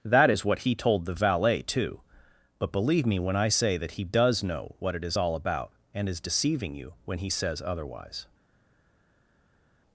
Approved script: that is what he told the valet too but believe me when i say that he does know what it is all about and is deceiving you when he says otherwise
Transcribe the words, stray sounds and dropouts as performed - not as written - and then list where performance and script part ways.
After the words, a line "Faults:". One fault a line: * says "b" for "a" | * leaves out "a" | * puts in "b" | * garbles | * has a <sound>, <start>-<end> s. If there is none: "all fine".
that is what he told the valet too but believe me when i say that he does know what it is all about and is deceiving you when he says otherwise
Faults:
all fine